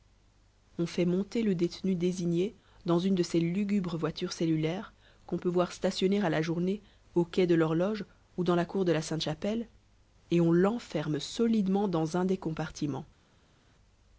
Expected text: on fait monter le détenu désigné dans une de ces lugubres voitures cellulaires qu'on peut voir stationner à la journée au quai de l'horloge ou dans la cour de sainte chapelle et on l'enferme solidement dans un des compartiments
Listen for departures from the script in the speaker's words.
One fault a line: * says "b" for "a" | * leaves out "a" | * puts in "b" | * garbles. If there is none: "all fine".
* puts in "la"